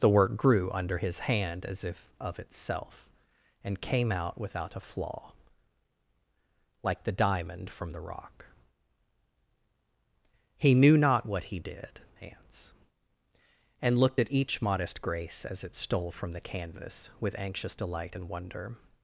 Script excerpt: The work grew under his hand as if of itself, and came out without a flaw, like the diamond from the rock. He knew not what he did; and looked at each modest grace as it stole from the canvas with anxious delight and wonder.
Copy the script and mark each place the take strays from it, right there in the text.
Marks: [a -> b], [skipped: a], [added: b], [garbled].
The work grew under his hand as if of itself, and came out without a flaw, like the diamond from the rock. He knew not what he did; [added: hans] and looked at each modest grace as it stole from the canvas with anxious delight and wonder.